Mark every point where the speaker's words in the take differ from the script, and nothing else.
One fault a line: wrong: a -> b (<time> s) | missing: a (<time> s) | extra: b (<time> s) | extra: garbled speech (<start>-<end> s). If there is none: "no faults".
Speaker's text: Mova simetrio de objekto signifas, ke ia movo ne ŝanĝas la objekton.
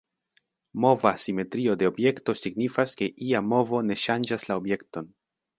no faults